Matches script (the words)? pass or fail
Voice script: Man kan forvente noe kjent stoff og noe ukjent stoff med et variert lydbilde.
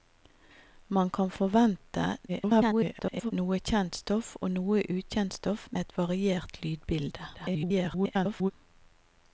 fail